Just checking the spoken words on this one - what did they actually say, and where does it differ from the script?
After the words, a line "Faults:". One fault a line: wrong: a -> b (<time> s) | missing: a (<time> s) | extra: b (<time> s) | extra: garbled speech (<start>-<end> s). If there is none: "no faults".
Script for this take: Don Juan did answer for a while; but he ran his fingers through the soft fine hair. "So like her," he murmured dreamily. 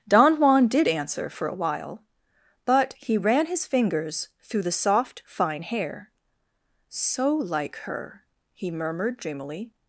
Don Juan did answer for a while; but he ran his fingers through the soft fine hair. "So like her," he murmured dreamily.
Faults:
no faults